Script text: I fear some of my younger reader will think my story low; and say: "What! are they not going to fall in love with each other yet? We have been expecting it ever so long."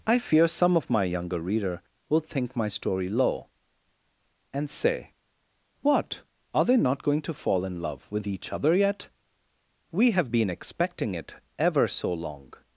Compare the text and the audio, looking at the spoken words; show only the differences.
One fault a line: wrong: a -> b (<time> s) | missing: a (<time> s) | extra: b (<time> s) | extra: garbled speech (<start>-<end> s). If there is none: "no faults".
no faults